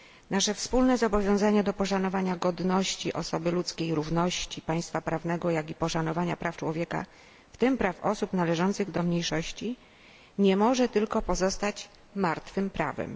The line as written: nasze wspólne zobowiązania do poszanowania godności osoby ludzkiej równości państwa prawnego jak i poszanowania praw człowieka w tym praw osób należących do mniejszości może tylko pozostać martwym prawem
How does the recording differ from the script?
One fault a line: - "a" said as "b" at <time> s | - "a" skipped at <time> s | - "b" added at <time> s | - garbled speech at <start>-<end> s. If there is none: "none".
- "nie" added at 10.4 s